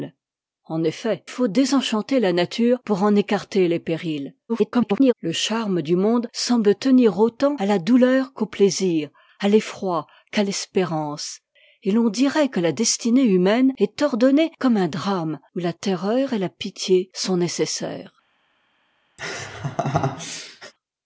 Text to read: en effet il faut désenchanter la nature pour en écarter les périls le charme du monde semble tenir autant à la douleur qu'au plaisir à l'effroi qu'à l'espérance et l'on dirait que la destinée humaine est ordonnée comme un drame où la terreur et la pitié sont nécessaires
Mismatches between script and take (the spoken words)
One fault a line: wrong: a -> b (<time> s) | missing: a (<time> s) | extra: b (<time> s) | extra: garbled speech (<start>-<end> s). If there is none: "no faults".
missing: il (1.2 s)
extra: garbled speech (4.5-5.1 s)